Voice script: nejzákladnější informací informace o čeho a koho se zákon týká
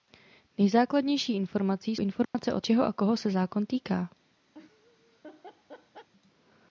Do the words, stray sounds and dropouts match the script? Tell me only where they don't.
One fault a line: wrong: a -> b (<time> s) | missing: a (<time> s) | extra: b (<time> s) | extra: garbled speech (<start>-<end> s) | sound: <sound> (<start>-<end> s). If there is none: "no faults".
sound: dropout (2.2-2.3 s)
sound: laugh (4.5-6.1 s)